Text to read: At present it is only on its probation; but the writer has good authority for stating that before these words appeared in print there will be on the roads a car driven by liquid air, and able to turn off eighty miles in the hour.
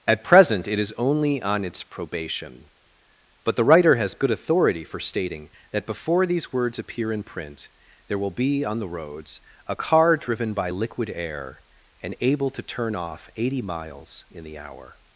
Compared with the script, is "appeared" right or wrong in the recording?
wrong